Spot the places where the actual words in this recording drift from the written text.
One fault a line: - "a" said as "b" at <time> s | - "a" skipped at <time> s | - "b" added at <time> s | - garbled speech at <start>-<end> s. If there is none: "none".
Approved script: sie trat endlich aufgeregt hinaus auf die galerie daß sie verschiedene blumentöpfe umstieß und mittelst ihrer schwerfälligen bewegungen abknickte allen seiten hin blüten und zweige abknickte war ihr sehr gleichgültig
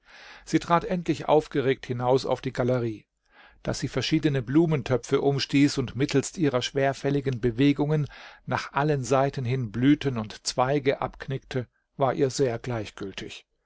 - "abknickte" said as "nach" at 8.5 s